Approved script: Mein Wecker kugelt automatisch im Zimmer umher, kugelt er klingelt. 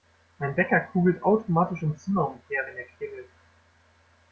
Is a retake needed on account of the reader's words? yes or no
yes